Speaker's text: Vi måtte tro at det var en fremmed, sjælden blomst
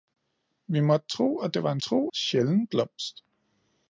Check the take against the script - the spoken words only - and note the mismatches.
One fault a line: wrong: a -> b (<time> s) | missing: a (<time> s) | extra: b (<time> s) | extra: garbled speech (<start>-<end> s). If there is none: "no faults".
wrong: fremmed -> tro (1.8 s)